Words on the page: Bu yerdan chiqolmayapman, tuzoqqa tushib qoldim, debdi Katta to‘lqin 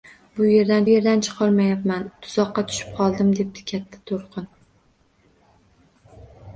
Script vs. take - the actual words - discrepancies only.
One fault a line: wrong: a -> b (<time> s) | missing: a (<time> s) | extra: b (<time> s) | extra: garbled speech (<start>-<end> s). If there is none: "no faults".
extra: yerdan (0.9 s)